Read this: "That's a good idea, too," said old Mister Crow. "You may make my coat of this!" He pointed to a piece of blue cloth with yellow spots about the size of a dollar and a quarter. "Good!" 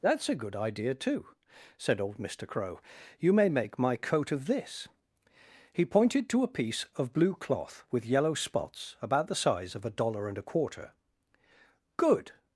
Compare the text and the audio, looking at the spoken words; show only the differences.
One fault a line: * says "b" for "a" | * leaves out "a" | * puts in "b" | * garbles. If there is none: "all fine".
all fine